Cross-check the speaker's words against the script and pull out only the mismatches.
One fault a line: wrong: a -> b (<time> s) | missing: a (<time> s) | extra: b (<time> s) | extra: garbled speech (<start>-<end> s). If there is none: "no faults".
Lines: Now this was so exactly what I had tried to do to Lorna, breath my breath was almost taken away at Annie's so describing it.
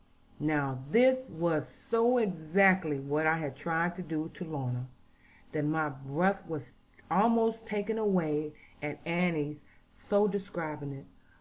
wrong: breath -> that (5.5 s)